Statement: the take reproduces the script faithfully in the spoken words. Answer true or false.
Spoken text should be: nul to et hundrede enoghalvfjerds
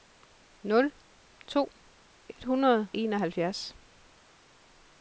true